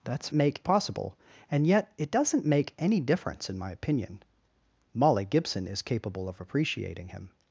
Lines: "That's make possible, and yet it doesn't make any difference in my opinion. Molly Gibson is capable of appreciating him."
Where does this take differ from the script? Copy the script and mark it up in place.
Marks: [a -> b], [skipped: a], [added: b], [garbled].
"That's make possible, and yet it doesn't make any difference in my opinion. Molly Gibson is capable of appreciating him."